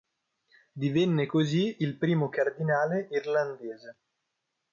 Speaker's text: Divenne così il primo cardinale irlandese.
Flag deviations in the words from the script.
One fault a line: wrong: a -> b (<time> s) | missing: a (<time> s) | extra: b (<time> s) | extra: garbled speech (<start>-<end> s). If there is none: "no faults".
no faults